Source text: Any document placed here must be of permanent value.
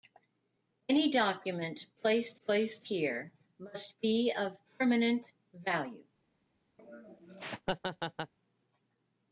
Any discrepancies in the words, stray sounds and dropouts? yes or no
yes